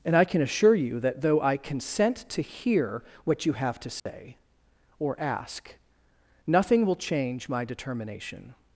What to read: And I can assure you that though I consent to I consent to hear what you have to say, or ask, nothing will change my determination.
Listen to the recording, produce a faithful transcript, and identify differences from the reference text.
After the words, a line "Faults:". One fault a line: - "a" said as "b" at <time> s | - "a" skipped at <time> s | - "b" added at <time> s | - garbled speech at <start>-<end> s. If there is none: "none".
And I can assure you that though I consent to hear what you have to say, or ask, nothing will change my determination.
Faults:
- "I consent to" skipped at 2.4 s